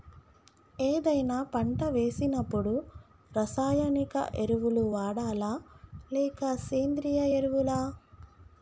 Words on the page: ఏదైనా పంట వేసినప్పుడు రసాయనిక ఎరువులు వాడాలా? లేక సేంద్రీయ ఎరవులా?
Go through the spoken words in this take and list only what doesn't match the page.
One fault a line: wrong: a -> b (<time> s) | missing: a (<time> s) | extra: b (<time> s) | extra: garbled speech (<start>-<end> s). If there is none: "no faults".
no faults